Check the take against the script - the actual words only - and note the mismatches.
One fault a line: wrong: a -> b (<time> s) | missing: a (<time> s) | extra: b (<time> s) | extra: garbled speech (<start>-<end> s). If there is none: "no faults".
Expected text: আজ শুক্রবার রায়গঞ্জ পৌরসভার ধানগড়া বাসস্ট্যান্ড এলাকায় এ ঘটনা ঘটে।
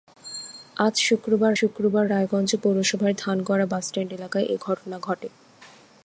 extra: শুক্রবার (1.6 s)